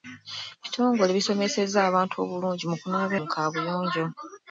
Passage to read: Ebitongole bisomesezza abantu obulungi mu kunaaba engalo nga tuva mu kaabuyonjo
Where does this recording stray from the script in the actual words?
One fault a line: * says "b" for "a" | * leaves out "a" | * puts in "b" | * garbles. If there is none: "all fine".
* leaves out "engalo nga tuva"